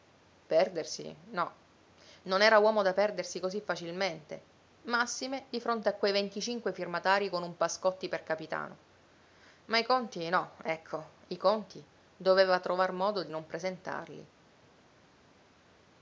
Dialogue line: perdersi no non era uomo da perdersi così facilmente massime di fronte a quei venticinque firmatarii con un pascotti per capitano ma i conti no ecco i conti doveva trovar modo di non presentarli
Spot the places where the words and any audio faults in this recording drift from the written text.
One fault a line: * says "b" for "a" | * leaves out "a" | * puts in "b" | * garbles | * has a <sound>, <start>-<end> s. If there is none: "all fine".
all fine